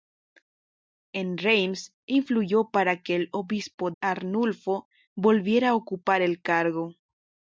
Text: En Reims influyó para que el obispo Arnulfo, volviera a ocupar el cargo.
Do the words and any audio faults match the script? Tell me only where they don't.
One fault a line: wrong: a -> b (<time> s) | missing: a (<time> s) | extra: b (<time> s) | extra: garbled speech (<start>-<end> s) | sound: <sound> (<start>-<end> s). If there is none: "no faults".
no faults